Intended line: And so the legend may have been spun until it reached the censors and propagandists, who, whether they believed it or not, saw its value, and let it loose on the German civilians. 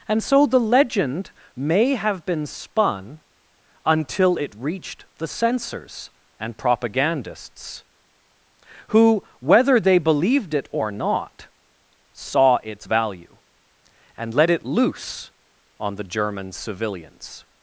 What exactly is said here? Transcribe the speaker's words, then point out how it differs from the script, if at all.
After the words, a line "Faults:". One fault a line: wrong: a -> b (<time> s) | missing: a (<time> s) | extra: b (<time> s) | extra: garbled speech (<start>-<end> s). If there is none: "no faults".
And so the legend may have been spun until it reached the censors and propagandists, who, whether they believed it or not, saw its value, and let it loose on the German civilians.
Faults:
no faults